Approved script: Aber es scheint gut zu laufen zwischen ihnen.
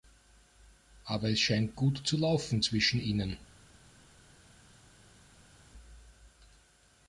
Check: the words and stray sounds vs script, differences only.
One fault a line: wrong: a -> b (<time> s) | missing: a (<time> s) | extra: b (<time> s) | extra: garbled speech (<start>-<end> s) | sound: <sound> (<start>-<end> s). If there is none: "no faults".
no faults